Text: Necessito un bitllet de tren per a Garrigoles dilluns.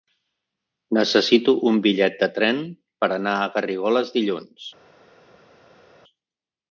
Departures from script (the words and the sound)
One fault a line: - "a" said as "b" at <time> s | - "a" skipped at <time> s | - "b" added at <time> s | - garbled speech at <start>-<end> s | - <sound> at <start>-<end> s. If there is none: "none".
- "anar" added at 3.2 s